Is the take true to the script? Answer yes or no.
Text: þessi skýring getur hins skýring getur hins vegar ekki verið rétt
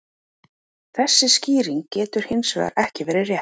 no